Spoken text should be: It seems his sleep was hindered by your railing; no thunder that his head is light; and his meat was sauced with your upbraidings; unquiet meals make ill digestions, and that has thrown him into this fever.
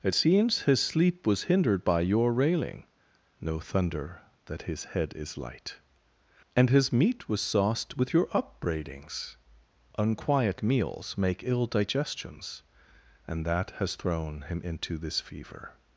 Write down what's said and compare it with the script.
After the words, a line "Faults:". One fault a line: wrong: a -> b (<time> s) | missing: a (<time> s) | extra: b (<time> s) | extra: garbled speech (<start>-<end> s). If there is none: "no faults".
It seems his sleep was hindered by your railing; no thunder that his head is light; and his meat was sauced with your upbraidings; unquiet meals make ill digestions, and that has thrown him into this fever.
Faults:
no faults